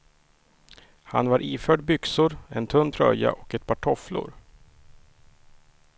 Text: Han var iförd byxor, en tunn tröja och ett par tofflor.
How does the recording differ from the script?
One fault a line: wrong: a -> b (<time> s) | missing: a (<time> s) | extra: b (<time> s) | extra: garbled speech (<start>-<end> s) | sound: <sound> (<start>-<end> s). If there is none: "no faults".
no faults